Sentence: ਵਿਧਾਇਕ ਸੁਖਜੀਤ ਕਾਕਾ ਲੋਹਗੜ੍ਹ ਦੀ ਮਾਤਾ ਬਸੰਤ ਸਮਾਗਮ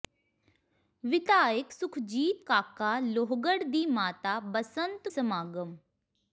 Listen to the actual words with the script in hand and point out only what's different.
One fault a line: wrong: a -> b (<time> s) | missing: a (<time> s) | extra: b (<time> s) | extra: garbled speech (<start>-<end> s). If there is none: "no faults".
no faults